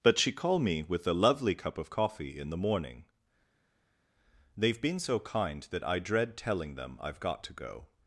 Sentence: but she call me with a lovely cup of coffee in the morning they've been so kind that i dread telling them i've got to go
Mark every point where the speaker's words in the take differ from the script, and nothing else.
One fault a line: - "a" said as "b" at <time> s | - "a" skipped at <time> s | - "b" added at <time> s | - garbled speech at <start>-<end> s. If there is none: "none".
none